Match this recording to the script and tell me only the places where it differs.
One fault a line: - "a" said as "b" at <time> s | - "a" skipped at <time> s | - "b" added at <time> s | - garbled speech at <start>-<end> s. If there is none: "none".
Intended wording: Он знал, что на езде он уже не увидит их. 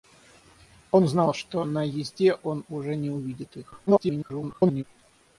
- garbled speech at 3.9-4.8 s